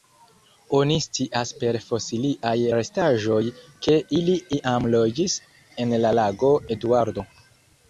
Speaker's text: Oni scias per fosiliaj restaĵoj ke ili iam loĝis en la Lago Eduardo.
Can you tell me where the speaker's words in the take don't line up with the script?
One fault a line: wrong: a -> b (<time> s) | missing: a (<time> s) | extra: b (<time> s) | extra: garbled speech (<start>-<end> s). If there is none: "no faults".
no faults